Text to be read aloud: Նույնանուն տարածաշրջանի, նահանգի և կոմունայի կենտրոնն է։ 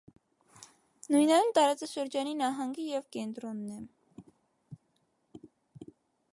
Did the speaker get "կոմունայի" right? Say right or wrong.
wrong